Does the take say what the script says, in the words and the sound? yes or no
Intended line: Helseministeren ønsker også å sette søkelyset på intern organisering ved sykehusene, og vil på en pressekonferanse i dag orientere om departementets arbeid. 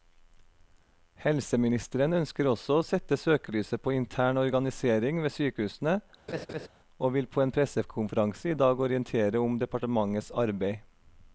no